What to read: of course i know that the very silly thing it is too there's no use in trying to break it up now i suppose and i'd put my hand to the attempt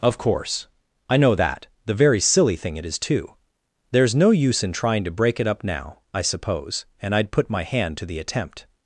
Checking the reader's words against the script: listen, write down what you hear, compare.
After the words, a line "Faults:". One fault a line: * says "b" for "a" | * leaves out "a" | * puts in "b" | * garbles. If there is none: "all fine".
of course i know that the very silly thing it is too there's no use in trying to break it up now i suppose and i'd put my hand to the attempt
Faults:
all fine